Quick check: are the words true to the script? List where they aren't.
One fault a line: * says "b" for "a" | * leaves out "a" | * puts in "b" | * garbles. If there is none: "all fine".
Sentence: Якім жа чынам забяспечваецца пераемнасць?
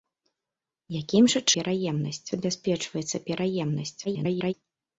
* says "пераемнасць" for "чынам"
* garbles